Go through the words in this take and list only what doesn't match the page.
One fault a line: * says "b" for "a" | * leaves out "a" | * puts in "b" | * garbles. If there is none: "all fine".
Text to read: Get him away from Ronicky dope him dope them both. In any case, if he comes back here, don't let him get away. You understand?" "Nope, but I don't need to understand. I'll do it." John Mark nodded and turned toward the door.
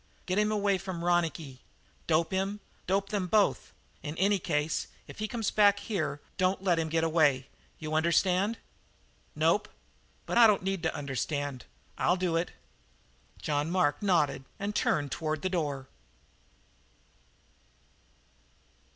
all fine